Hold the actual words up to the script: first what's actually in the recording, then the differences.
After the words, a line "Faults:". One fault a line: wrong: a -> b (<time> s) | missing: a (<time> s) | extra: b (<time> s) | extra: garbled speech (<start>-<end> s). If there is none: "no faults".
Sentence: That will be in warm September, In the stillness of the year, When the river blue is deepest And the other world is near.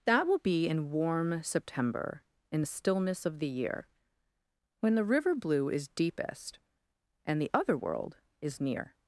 That will be in warm September, In the stillness of the year, When the river blue is deepest And the other world is near.
Faults:
no faults